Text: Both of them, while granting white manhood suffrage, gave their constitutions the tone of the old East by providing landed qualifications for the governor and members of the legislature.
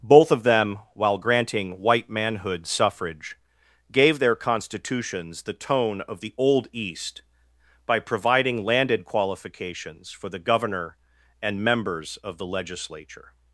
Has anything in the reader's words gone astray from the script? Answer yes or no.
no